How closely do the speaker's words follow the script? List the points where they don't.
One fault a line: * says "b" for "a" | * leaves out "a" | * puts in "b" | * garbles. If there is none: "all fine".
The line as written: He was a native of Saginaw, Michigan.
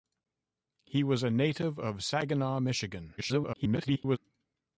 * garbles